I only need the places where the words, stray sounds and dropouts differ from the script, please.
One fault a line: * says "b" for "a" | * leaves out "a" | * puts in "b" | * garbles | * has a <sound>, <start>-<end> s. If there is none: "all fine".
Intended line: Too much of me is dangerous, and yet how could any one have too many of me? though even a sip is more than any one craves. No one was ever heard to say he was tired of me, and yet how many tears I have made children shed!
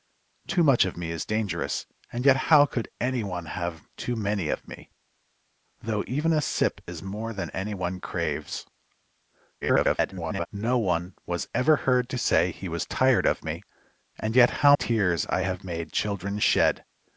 * garbles
* leaves out "many"